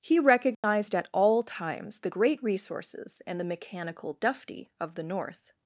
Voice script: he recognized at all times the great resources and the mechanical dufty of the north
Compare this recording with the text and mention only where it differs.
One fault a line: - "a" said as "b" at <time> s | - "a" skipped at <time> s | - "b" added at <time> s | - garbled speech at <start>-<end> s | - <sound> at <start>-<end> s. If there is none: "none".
- dropout at 0.5-0.6 s